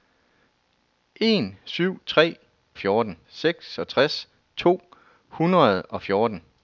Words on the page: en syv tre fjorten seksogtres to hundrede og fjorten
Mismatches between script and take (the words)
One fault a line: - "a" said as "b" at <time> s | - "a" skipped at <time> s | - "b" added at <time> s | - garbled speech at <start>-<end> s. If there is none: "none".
none